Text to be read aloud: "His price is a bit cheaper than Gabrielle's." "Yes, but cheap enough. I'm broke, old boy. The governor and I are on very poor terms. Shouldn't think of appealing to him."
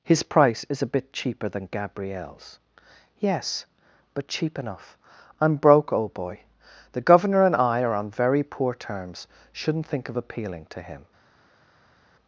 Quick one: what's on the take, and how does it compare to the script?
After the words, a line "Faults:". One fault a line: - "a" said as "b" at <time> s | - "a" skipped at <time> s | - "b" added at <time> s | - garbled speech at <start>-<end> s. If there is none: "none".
"His price is a bit cheaper than Gabrielle's." "Yes, but cheap enough. I'm broke, old boy. The governor and I are on very poor terms. Shouldn't think of appealing to him."
Faults:
none